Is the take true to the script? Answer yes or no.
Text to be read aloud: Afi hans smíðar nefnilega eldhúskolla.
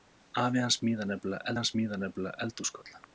no